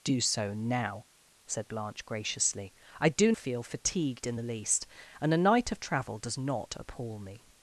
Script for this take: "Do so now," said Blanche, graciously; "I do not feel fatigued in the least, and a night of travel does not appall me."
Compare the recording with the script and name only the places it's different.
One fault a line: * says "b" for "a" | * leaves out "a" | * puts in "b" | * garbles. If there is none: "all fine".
* leaves out "not"